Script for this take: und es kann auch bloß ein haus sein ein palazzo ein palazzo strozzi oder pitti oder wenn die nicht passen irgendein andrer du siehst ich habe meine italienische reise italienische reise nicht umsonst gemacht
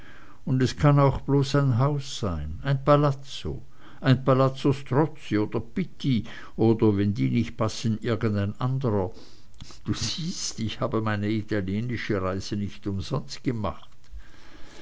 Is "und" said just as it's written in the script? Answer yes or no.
yes